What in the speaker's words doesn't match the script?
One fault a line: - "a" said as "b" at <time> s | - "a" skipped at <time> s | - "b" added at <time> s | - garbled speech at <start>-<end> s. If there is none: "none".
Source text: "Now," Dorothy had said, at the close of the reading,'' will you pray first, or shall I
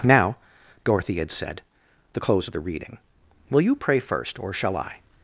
- "at" skipped at 1.6 s